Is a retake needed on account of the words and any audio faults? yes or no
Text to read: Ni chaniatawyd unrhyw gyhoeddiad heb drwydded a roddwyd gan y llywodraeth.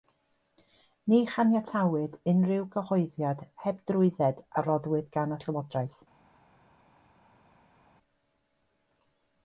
no